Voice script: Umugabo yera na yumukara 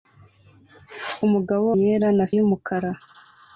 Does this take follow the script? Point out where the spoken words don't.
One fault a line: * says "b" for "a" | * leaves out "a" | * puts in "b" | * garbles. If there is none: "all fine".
all fine